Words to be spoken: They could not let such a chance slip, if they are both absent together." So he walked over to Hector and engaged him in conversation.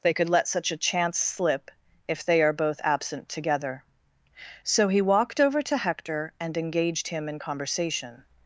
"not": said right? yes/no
no